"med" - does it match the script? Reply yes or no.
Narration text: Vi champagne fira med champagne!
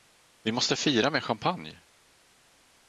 yes